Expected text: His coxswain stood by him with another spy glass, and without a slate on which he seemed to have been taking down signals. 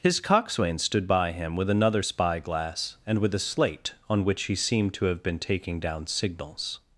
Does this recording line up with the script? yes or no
no